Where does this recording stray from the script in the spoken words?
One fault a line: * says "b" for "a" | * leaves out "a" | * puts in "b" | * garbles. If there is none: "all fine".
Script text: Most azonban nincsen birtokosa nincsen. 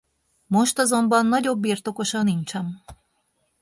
* says "nagyobb" for "nincsen"